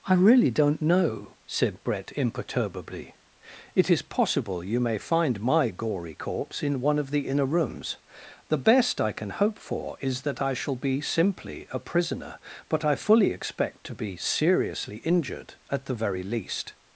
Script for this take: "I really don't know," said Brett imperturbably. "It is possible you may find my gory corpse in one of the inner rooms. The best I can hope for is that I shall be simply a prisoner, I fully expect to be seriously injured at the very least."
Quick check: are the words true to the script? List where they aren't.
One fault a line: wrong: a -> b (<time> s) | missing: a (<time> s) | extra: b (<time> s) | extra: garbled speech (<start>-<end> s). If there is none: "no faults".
extra: but (12.7 s)